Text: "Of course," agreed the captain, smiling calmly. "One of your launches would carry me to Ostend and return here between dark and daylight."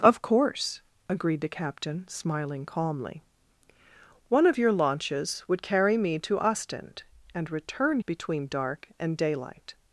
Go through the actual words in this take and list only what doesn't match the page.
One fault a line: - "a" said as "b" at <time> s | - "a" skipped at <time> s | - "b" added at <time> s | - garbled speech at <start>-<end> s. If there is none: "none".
- "here" skipped at 8.0 s